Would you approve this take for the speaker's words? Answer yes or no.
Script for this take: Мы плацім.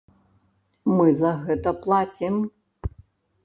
no